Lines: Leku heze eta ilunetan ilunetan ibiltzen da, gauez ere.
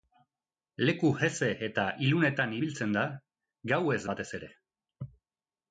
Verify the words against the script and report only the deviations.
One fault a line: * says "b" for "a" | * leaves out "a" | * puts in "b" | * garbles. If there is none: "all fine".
* leaves out "ilunetan"
* puts in "batez"